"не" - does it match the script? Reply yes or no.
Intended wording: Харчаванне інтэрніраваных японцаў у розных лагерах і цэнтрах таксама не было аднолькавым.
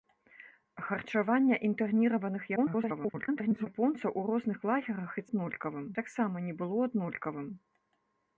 yes